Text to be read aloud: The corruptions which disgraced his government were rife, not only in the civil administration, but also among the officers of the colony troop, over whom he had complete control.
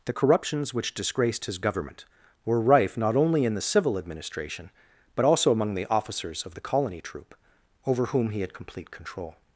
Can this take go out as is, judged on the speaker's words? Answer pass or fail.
pass